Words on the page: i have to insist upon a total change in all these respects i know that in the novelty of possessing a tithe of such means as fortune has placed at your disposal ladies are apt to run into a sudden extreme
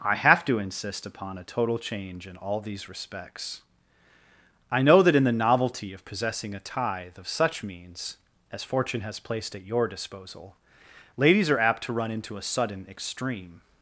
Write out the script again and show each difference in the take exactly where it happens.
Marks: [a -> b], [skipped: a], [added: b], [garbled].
i have to insist upon a total change in all these respects i know that in the novelty of possessing a tithe of such means as fortune has placed at your disposal ladies are apt to run into a sudden extreme